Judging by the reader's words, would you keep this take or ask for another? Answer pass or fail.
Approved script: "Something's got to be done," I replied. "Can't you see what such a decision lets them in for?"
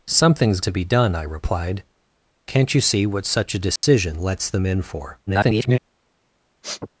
fail